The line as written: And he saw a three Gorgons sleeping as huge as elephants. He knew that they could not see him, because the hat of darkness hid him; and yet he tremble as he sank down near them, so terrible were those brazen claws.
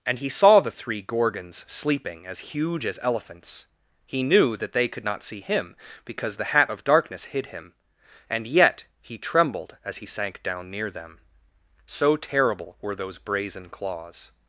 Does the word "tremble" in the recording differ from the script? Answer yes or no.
yes